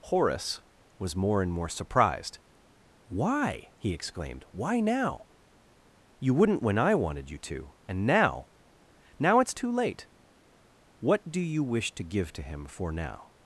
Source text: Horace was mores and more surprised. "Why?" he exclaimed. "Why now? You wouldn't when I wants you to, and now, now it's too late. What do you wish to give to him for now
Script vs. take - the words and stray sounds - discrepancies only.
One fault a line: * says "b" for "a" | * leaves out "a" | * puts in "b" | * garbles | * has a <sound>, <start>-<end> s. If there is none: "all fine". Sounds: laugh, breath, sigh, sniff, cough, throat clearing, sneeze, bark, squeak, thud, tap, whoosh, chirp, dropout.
* says "more" for "mores"
* says "wanted" for "wants"